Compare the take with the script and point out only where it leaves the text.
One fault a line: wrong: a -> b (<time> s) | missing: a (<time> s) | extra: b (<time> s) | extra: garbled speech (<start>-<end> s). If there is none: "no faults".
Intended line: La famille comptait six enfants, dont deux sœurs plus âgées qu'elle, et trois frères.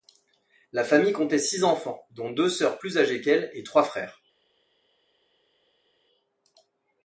no faults